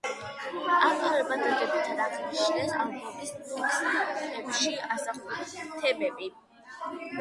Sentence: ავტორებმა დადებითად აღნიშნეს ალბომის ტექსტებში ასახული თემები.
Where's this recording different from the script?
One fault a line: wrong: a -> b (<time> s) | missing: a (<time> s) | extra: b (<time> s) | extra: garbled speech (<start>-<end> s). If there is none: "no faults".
no faults